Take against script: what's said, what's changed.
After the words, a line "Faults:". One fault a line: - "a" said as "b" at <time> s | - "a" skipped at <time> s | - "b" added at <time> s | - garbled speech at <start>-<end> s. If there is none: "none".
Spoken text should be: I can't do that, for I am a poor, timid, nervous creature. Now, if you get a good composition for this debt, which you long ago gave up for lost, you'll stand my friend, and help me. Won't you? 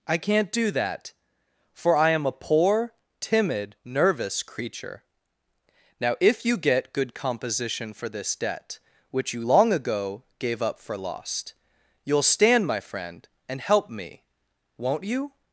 I can't do that, for I am a poor, timid, nervous creature. Now, if you get good composition for this debt, which you long ago gave up for lost, you'll stand my friend, and help me. Won't you?
Faults:
- "a" skipped at 6.9 s